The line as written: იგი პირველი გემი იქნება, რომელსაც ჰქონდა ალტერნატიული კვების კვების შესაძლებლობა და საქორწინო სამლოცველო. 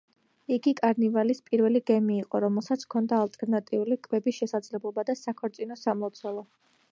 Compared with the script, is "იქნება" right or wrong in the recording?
wrong